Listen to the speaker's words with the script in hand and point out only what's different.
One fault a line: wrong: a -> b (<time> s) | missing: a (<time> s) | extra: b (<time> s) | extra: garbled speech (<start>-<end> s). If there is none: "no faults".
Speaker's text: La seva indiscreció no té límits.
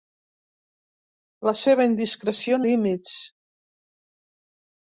missing: no té (2.6 s)